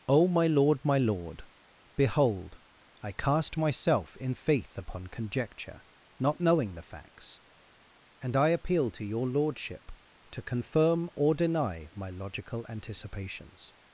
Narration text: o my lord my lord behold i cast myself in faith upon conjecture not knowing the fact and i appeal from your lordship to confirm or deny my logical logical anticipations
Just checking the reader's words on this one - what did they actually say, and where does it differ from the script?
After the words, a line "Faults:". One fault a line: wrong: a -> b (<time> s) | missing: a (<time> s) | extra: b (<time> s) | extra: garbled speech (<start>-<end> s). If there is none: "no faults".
o my lord my lord behold i cast myself in faith upon conjecture not knowing the facts and i appeal to your lordship to confirm or deny my logical anticipations
Faults:
wrong: fact -> facts (6.9 s)
wrong: from -> to (8.9 s)
missing: logical (12.7 s)